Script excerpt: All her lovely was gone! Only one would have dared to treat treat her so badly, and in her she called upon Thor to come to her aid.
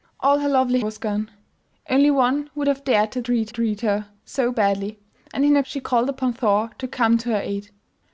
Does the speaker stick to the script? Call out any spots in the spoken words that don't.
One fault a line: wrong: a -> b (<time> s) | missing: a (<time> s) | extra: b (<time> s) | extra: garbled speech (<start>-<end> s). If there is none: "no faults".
no faults